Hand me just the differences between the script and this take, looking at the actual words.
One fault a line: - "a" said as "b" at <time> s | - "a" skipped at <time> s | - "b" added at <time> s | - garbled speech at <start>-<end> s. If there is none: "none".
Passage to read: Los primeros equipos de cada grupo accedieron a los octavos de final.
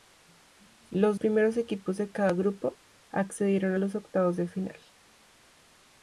none